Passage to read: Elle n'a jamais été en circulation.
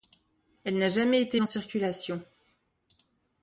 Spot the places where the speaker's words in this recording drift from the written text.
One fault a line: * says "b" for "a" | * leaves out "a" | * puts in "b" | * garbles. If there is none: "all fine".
all fine